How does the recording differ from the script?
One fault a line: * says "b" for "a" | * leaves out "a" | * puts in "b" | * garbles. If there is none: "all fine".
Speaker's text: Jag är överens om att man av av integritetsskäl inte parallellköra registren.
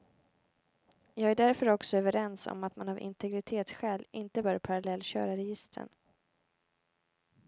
* puts in "därför också"
* leaves out "av"
* puts in "bör"